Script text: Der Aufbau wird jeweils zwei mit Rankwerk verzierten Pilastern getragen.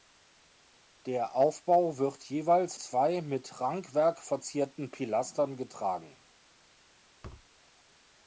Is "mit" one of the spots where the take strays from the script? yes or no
no